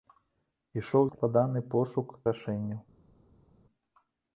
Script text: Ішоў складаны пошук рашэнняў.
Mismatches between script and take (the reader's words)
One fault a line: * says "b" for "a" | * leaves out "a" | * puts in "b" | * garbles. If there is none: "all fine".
all fine